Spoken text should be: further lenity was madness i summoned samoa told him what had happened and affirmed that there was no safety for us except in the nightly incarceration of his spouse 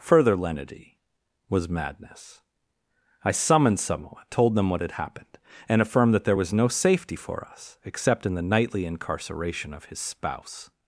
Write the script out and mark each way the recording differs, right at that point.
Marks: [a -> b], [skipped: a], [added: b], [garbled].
further lenity was madness i summoned samoa told [him -> them] what had happened and affirmed that there was no safety for us except in the nightly incarceration of his spouse